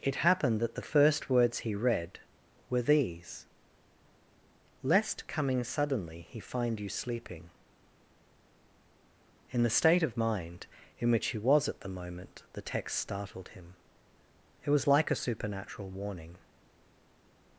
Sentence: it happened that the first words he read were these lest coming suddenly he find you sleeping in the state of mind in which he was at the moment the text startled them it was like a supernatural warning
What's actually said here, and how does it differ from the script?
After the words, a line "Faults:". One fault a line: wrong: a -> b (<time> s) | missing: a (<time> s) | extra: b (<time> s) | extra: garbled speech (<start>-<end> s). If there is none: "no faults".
it happened that the first words he read were these lest coming suddenly he find you sleeping in the state of mind in which he was at the moment the text startled him it was like a supernatural warning
Faults:
wrong: them -> him (13.5 s)